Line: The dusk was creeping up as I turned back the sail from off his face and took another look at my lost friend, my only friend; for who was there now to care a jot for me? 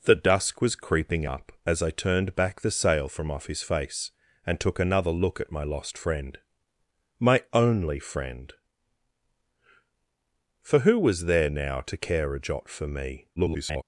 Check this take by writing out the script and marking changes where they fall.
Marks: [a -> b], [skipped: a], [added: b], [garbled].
The dusk was creeping up as I turned back the sail from off his face and took another look at my lost friend, my only friend; for who was there now to care a jot for me? [garbled]